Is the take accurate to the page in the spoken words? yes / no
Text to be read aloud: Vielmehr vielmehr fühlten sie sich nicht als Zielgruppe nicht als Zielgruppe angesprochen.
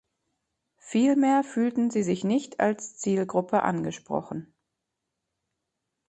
no